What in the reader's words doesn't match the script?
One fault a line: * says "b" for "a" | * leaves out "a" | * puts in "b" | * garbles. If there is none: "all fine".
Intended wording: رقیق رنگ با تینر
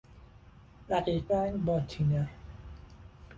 all fine